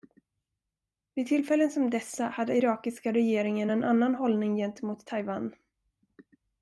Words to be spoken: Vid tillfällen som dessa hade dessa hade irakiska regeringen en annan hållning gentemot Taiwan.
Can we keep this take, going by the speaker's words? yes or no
no